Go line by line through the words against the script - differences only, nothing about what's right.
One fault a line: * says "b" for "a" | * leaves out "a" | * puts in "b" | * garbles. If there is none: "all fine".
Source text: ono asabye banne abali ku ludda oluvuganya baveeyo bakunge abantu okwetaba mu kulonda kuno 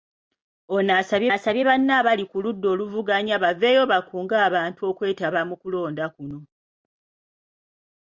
* puts in "asabye"